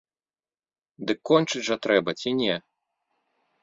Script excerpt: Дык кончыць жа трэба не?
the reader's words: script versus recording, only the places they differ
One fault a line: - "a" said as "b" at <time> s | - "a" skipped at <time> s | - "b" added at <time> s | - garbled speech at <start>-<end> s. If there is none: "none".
- "ці" added at 2.2 s